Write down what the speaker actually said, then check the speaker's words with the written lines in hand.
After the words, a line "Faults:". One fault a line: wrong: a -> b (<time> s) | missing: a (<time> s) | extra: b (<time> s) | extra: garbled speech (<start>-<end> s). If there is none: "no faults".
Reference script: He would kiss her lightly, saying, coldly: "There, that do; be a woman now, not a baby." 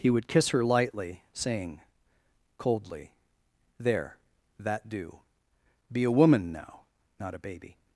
He would kiss her lightly, saying, coldly: "There, that do; be a woman now, not a baby."
Faults:
no faults